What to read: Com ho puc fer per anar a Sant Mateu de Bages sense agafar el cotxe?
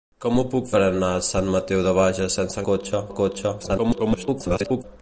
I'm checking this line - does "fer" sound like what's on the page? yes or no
no